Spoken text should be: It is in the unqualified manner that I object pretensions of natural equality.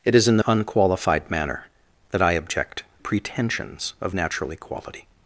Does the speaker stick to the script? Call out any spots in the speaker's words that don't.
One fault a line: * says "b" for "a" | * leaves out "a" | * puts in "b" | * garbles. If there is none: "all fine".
all fine